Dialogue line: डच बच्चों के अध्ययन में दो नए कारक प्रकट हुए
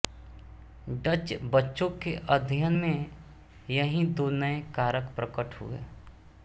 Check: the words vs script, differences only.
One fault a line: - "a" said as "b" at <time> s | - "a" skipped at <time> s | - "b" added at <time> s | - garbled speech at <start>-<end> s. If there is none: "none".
- "यही" added at 3.7 s